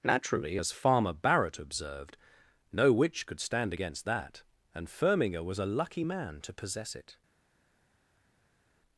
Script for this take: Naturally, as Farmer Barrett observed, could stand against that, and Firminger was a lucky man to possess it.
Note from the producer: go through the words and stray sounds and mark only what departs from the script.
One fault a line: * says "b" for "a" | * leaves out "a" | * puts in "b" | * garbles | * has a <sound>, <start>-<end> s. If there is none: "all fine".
* puts in "no witch"